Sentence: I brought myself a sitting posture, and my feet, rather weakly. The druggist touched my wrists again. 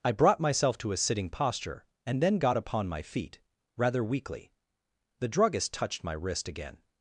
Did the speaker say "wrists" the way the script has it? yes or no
no